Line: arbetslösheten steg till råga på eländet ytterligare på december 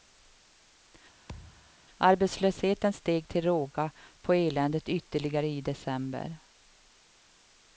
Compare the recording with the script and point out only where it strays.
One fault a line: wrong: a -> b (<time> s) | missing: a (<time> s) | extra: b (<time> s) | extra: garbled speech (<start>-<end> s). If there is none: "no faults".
wrong: på -> i (5.5 s)